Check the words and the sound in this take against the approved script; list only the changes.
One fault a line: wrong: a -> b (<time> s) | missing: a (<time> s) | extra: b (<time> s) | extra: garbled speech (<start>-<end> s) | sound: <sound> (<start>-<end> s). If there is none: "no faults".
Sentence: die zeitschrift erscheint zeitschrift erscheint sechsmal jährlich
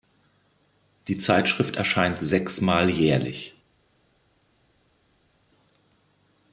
missing: zeitschrift erscheint (2.2 s)